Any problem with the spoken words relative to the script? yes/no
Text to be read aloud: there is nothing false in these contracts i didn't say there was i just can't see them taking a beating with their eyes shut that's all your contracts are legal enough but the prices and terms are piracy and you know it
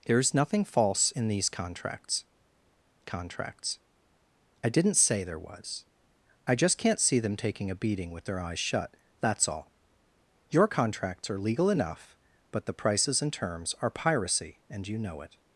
yes